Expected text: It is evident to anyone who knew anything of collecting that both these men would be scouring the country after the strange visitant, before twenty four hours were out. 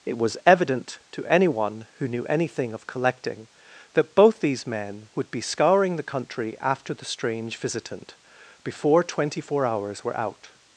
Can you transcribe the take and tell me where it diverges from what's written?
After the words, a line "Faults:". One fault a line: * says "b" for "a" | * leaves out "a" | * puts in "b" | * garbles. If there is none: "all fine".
It was evident to anyone who knew anything of collecting that both these men would be scouring the country after the strange visitant, before twenty four hours were out.
Faults:
* says "was" for "is"